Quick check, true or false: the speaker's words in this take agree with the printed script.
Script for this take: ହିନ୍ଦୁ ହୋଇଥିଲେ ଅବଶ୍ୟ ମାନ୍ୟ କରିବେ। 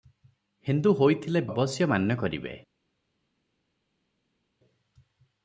true